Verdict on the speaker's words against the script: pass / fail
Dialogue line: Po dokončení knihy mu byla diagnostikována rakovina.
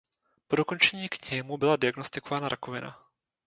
pass